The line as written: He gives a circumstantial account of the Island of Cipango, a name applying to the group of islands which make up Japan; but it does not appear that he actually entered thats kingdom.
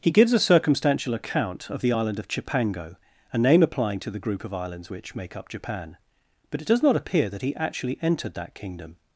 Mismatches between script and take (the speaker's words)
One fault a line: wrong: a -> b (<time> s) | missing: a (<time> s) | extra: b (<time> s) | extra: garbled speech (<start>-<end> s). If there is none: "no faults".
wrong: thats -> that (8.3 s)